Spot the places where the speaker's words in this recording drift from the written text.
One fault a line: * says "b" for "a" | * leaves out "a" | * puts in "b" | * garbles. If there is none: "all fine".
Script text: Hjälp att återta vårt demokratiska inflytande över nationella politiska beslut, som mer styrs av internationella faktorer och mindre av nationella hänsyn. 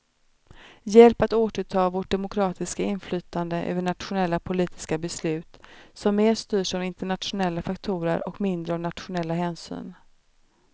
all fine